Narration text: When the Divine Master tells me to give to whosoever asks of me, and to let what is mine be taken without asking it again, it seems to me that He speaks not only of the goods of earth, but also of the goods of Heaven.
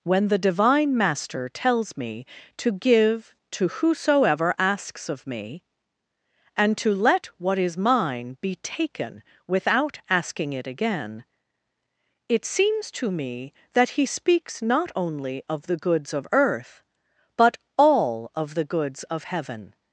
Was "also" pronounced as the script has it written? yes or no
no